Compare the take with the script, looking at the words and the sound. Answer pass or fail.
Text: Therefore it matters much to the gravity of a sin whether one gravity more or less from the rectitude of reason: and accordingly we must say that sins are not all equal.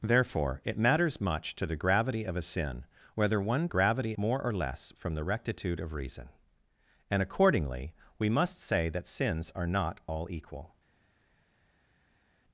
pass